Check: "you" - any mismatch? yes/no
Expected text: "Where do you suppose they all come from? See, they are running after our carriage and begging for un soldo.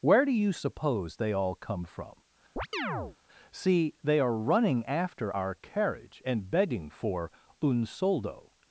no